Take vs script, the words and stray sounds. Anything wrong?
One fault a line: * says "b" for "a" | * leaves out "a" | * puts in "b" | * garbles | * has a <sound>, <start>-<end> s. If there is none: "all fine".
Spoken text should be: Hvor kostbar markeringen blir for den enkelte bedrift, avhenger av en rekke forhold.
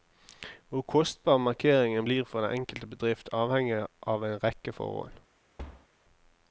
* has a thud, 5.6-5.9 s